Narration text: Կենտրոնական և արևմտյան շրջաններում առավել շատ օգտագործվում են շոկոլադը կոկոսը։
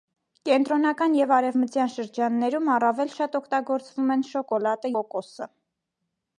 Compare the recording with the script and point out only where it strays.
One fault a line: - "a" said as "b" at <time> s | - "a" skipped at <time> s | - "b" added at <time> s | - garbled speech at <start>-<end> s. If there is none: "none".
none